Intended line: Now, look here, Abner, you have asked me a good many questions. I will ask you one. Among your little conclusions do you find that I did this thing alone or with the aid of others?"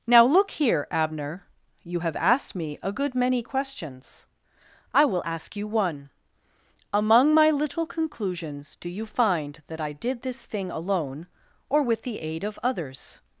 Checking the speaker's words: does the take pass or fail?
fail